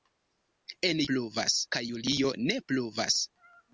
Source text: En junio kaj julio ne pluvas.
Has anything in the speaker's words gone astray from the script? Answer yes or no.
yes